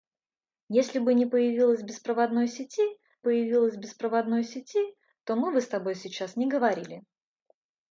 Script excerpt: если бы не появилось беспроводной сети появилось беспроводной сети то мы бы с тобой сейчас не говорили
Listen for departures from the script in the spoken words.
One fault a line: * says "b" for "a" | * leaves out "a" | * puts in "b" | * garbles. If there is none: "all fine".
all fine